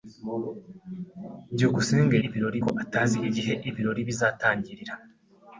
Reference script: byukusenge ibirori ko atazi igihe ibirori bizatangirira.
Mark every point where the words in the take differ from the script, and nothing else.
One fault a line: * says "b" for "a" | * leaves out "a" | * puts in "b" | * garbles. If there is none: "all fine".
all fine